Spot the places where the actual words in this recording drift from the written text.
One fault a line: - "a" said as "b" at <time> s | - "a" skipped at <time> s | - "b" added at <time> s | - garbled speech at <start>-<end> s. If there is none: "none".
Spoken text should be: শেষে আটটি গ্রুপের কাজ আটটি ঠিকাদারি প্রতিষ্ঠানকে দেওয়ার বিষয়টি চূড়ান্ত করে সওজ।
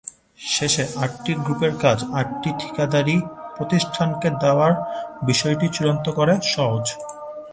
none